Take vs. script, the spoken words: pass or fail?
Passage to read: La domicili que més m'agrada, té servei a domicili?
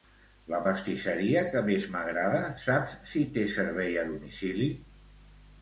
fail